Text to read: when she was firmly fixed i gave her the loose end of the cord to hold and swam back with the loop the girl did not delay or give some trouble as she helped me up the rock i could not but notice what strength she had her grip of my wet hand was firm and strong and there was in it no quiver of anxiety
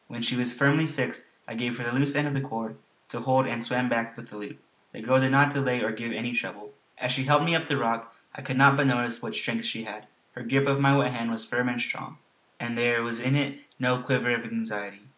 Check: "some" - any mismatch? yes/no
yes